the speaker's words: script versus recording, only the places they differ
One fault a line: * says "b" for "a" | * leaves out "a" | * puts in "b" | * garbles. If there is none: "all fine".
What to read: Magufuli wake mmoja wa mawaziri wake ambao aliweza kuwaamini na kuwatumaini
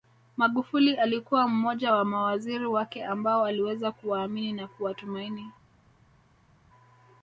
* says "alikuwa" for "wake"